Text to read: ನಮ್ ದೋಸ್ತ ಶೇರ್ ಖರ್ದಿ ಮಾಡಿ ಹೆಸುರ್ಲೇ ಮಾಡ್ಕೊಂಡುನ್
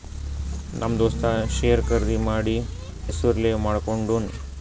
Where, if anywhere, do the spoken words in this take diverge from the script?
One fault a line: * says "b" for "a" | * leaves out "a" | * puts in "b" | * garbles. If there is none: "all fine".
all fine